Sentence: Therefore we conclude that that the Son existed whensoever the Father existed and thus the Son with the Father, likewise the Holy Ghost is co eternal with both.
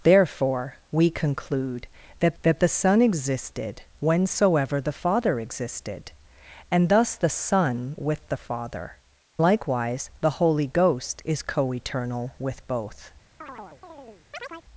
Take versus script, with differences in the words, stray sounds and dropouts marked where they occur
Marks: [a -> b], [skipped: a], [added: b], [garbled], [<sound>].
Therefore we conclude that that the Son existed whensoever the Father existed and thus the Son with the Father, likewise the Holy Ghost is co eternal with both. [chirp]